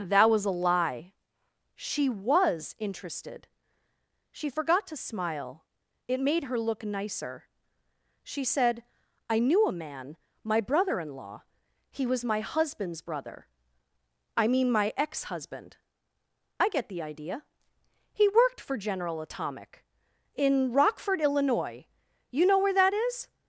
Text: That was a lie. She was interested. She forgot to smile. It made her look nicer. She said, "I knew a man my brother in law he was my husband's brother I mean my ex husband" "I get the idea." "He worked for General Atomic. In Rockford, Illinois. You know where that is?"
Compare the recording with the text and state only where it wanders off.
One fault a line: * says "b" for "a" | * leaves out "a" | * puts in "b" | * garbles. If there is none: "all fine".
all fine